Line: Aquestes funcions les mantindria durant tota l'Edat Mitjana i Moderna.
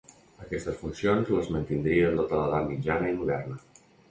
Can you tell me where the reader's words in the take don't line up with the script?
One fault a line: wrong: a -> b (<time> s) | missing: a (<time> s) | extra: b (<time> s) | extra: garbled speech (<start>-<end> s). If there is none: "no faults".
missing: durant (2.1 s)